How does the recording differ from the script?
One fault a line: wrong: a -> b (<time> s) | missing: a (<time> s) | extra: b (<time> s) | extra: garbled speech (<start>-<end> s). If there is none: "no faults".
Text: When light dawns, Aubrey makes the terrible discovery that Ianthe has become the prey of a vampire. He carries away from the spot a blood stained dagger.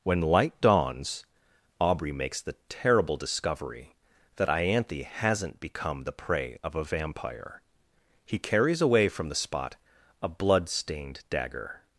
wrong: has -> hasn't (5.0 s)